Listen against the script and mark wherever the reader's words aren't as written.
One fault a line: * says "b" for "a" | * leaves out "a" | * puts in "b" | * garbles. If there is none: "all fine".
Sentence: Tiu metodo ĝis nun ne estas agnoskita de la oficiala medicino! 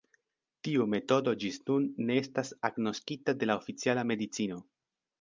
all fine